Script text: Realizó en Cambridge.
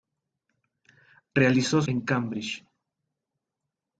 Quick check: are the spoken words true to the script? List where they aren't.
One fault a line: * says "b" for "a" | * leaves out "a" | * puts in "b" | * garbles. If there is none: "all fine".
all fine